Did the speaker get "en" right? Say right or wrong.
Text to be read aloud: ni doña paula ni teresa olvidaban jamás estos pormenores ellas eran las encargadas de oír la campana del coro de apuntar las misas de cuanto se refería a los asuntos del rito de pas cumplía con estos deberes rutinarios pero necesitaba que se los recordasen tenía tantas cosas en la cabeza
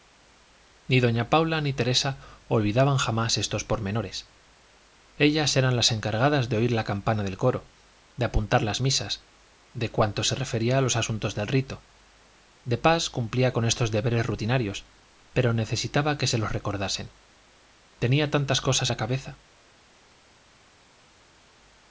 wrong